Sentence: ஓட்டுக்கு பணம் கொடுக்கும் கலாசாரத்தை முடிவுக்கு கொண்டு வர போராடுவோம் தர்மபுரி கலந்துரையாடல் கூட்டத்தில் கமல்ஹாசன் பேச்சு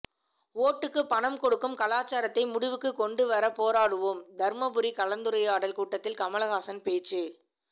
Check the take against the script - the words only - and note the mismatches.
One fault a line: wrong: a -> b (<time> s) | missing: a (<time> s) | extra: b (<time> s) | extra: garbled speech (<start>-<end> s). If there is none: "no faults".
no faults